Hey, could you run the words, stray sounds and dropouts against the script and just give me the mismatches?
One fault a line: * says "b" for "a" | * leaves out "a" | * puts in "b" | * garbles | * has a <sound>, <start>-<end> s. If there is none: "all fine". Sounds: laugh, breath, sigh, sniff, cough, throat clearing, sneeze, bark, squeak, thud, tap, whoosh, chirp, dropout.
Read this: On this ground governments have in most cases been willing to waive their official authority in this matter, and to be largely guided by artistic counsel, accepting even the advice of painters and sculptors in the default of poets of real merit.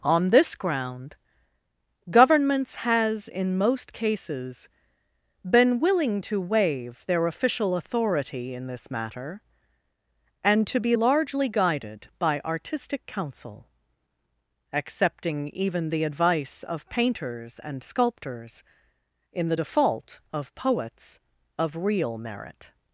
* says "has" for "have"